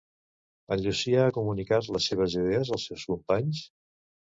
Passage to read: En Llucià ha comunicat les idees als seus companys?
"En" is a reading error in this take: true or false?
false